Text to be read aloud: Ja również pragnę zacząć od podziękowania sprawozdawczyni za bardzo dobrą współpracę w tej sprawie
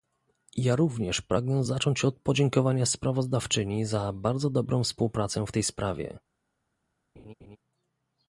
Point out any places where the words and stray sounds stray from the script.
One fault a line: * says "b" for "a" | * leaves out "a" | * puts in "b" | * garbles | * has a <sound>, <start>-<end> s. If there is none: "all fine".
* has a laugh, 7.2-7.6 s